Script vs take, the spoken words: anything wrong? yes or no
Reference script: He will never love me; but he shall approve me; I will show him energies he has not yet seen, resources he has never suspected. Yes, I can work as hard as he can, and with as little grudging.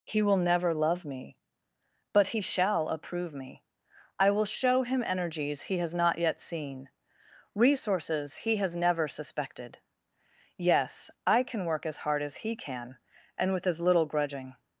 no